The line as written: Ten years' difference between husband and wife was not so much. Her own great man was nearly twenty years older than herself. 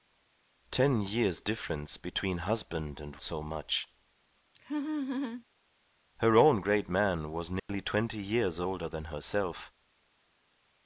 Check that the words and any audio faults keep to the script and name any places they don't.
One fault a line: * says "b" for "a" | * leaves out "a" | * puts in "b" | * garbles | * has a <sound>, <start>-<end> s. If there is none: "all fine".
* leaves out "wife was not"
* has a laugh, 4.6-5.5 s
* has a dropout, 7.6-7.7 s